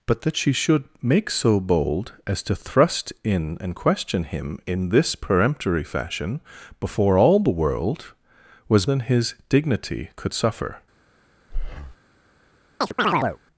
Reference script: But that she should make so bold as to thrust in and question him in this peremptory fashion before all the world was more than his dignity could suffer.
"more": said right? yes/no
no